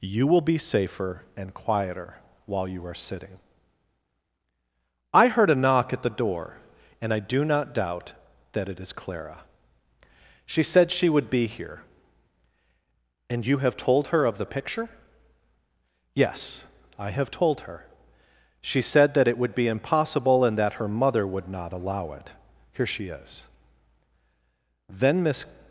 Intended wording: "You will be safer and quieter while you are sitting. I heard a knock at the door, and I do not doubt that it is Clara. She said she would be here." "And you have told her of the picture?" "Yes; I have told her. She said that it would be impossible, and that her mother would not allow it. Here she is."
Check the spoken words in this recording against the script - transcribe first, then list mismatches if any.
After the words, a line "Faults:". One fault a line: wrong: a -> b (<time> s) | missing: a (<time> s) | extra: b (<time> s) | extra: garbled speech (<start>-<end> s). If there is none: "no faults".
"You will be safer and quieter while you are sitting. I heard a knock at the door, and I do not doubt that it is Clara. She said she would be here." "And you have told her of the picture?" "Yes; I have told her. She said that it would be impossible, and that her mother would not allow it. Here she is." Then Miss
Faults:
extra: Then Miss (24.9 s)